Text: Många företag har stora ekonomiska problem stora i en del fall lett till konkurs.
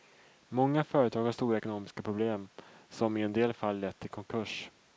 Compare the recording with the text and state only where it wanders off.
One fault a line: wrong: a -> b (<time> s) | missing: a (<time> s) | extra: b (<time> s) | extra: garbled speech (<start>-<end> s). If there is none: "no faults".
wrong: stora -> som (2.9 s)